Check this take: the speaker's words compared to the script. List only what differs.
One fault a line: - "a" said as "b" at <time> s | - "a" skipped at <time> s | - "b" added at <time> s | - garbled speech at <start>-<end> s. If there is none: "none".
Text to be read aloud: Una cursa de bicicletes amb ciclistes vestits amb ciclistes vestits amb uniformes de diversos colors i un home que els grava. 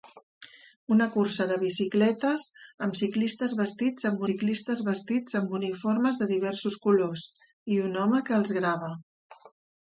none